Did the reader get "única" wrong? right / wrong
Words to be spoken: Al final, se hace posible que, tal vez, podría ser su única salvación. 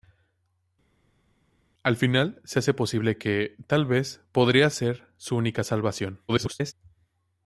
right